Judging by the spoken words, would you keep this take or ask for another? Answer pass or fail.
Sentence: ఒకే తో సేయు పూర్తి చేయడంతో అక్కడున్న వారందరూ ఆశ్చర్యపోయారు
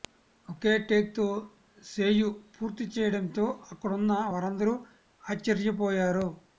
fail